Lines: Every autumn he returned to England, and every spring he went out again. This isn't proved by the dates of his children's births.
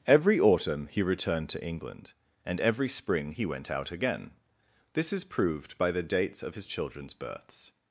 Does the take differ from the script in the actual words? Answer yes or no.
yes